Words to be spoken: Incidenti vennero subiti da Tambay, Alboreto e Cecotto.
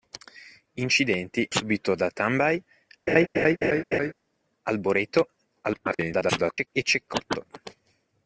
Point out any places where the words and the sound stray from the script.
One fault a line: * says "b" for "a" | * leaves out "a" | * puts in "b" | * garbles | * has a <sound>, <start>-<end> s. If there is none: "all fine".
* leaves out "vennero"
* has a laugh, 3.1-4.1 s
* garbles